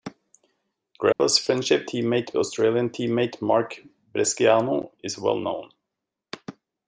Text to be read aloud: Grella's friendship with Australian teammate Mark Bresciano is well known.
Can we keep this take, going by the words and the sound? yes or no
no